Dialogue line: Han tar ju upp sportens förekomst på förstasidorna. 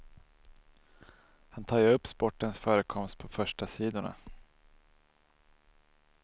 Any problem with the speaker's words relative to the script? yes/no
no